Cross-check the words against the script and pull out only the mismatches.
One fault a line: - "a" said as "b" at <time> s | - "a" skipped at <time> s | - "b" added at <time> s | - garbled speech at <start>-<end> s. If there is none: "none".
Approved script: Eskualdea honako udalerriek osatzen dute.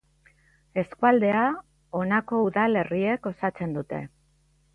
none